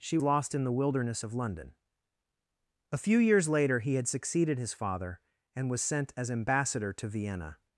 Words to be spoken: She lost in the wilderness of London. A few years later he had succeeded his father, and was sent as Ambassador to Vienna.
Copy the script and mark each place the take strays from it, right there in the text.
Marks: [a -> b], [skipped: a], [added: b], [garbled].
She lost in the wilderness of London. A few years later he had succeeded his father, and was sent as Ambassador to Vienna.